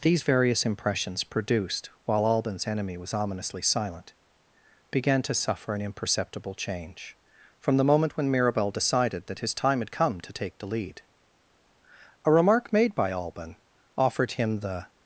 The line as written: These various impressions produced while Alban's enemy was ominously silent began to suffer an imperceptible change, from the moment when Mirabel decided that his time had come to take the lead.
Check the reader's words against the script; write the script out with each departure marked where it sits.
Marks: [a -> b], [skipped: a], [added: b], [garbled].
These various impressions produced while Alban's enemy was ominously silent began to suffer an imperceptible change, from the moment when Mirabel decided that his time had come to take the lead. [added: A remark made by Alban offered him the]